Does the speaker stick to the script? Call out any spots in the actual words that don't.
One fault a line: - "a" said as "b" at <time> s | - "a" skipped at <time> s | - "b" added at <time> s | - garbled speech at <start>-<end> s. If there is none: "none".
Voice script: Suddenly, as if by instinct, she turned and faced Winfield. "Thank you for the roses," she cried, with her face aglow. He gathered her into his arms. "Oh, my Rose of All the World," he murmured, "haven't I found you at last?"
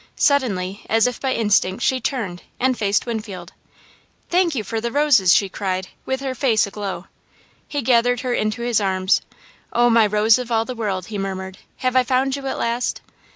- "haven't" said as "have" at 11.8 s